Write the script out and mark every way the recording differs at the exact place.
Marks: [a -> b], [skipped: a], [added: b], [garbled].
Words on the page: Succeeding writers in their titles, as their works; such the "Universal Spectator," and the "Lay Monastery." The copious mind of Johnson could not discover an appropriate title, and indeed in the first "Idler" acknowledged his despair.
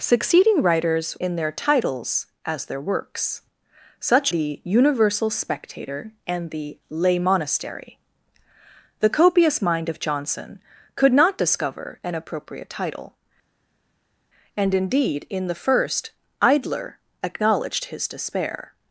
Succeeding writers in their titles, as their works; such the "Universal Spectator," and the "Lay Monastery." The copious mind of Johnson could not discover an appropriate title, and indeed in the first "Idler" acknowledged his despair.